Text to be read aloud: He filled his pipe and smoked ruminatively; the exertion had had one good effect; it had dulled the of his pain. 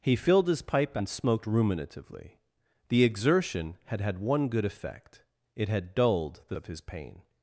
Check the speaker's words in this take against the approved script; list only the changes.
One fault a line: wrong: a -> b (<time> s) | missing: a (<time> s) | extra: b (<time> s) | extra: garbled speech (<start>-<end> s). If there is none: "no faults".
no faults